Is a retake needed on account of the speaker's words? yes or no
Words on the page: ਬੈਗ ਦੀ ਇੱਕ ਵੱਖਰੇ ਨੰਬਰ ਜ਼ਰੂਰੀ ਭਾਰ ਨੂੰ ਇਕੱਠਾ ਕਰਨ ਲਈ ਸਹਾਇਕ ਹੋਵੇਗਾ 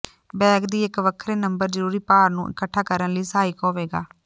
no